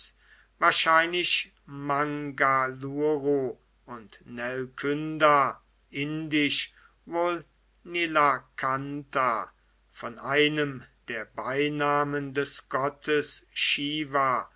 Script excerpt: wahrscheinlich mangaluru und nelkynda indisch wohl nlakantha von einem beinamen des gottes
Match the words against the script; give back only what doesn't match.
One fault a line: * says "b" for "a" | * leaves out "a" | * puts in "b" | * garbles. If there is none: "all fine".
* puts in "der"